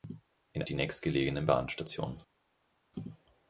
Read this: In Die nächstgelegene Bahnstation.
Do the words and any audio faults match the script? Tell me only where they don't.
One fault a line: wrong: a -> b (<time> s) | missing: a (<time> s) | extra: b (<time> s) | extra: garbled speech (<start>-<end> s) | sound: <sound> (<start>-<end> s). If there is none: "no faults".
no faults